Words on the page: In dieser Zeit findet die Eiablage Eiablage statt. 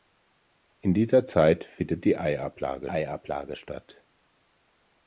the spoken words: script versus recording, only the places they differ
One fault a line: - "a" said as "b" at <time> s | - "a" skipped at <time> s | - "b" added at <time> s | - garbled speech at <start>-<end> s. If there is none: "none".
none